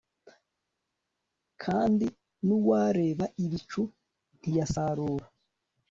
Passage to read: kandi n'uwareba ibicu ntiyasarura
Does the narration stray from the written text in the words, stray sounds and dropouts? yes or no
no